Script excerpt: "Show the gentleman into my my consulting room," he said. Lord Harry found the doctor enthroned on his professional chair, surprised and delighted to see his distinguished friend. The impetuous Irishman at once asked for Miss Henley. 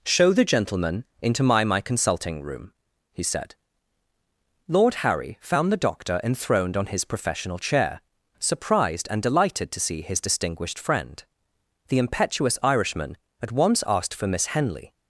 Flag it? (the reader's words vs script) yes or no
no